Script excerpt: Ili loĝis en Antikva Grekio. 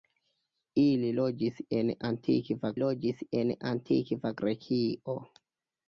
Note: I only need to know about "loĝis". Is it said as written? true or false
true